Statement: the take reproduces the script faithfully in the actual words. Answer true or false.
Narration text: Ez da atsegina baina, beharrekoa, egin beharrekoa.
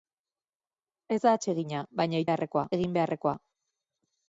true